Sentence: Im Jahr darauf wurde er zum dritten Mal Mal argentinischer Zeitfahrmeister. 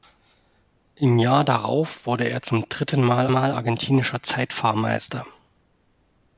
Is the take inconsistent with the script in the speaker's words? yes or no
no